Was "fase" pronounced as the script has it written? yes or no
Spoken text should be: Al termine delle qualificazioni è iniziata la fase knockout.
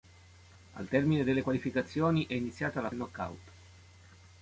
no